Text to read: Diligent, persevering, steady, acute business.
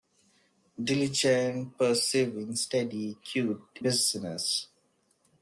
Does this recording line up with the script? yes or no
yes